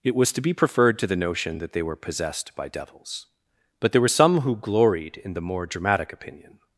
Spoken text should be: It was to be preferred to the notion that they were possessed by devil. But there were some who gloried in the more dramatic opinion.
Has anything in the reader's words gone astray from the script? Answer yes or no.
yes